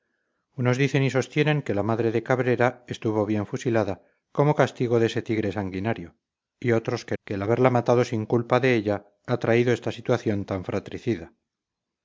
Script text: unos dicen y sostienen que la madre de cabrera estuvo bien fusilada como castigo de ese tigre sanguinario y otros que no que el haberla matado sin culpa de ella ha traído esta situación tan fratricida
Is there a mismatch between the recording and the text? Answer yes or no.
yes